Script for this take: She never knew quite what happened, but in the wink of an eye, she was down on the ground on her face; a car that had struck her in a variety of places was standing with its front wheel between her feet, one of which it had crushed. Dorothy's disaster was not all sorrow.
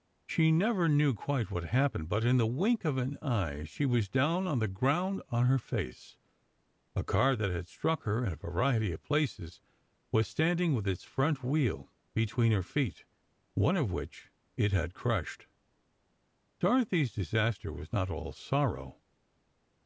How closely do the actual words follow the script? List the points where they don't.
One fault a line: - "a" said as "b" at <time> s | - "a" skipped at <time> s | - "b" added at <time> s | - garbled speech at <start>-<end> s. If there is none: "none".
none